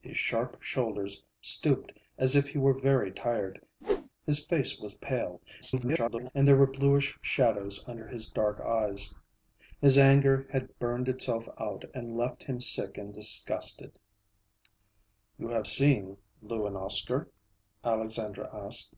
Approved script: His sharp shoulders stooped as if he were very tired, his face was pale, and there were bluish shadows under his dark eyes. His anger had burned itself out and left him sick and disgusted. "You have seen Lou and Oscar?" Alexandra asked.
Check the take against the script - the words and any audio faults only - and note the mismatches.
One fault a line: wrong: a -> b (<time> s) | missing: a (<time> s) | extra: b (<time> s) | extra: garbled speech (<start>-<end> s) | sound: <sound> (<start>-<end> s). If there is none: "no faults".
sound: whoosh (3.8-4.1 s)
extra: garbled speech (5.6-6.3 s)